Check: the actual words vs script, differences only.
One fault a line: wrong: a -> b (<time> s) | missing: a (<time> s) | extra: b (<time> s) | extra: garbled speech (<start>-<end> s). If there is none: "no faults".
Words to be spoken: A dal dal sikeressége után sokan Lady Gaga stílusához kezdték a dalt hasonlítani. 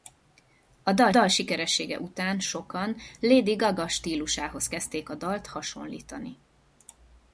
no faults